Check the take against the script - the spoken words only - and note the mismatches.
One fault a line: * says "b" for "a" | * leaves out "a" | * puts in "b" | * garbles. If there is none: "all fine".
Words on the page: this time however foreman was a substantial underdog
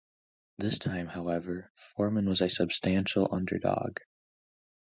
all fine